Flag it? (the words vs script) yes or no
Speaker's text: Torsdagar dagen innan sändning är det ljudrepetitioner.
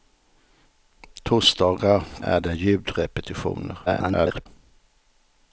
yes